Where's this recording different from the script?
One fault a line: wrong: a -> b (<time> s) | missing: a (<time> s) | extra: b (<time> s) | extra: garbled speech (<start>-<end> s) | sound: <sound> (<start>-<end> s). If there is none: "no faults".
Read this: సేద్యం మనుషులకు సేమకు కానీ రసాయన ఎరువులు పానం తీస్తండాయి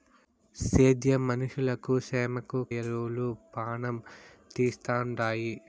missing: కానీ రసాయన (2.6 s)